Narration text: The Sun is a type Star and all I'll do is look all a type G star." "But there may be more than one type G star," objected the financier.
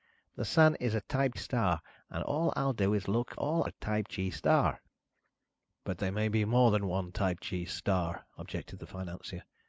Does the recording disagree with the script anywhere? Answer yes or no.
no